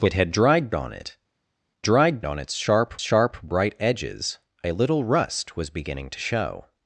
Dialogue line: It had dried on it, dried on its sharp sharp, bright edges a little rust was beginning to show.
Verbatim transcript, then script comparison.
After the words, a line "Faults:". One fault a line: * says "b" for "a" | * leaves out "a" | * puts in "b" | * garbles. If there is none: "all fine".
It had dried on it, dried on its sharp sharp, bright edges a little rust was beginning to show.
Faults:
all fine